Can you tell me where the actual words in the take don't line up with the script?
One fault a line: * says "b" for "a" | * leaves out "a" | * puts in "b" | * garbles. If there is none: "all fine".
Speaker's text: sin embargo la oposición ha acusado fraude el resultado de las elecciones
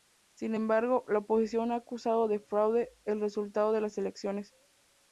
* puts in "de"